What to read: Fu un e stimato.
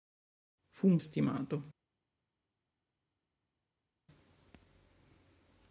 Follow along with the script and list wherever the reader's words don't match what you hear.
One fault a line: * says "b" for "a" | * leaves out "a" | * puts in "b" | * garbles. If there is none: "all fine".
all fine